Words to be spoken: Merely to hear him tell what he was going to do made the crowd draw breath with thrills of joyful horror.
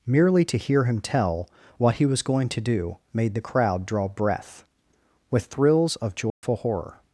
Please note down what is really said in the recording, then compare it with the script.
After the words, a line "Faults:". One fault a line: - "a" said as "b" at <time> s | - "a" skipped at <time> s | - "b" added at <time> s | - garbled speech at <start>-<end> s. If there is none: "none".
Merely to hear him tell what he was going to do made the crowd draw breath with thrills of joyful horror.
Faults:
none